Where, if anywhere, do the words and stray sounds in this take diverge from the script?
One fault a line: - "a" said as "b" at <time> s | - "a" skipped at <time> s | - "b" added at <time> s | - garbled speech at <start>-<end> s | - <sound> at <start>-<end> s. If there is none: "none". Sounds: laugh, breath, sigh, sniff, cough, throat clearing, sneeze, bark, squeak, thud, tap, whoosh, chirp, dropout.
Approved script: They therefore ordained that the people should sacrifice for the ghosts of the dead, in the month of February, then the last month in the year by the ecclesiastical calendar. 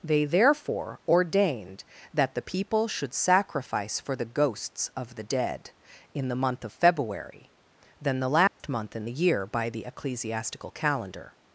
- dropout at 8.5-8.6 s